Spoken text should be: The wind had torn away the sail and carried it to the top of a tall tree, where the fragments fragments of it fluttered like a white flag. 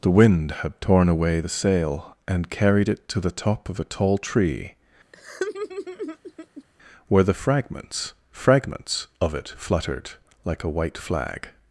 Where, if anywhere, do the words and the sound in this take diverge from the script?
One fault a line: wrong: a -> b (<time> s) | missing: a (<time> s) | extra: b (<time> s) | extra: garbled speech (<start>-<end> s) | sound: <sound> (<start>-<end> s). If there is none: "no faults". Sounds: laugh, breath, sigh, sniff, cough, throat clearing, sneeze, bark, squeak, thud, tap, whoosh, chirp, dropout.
sound: laugh (5.1-6.6 s)